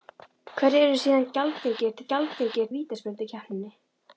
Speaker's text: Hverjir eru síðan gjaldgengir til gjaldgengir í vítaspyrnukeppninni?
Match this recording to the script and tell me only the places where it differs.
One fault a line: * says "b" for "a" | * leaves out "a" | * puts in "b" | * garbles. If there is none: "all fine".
all fine